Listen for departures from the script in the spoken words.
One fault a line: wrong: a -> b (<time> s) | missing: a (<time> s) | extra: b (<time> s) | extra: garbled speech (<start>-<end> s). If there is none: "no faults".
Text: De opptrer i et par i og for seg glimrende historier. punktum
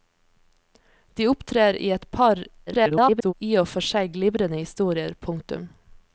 extra: garbled speech (2.7-3.3 s)